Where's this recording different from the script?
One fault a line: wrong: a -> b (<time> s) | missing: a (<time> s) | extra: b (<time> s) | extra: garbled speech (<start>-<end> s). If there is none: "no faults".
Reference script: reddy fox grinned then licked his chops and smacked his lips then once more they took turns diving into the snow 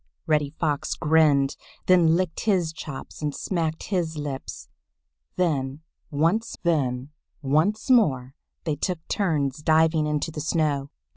extra: then once (6.6 s)